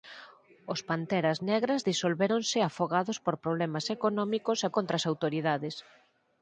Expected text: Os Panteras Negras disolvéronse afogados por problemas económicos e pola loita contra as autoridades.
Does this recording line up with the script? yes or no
no